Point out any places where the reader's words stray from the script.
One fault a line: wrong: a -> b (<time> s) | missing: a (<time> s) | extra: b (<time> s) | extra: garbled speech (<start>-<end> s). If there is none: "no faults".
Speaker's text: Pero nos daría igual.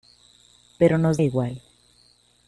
missing: daría (1.2 s)